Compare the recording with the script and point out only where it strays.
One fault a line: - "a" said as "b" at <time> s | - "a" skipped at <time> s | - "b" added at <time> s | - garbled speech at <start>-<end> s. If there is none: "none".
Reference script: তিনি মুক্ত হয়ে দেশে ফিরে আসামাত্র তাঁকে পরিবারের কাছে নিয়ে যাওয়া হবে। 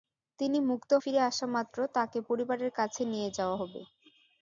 - "হয়ে দেশে" skipped at 0.9 s